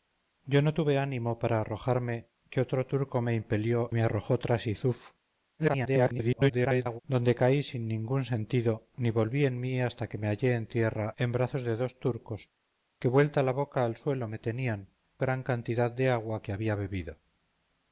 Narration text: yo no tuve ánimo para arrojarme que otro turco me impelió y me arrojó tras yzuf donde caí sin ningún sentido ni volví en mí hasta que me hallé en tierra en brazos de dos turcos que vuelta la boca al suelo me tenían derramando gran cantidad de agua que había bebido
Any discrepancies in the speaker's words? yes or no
yes